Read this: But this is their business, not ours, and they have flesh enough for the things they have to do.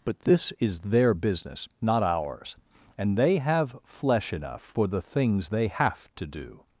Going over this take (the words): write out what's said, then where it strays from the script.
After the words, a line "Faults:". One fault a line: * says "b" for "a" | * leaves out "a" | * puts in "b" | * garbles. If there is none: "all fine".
But this is their business, not ours, and they have flesh enough for the things they have to do.
Faults:
all fine